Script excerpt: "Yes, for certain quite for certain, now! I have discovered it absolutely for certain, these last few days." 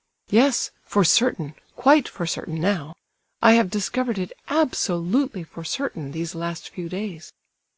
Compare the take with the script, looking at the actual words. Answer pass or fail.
pass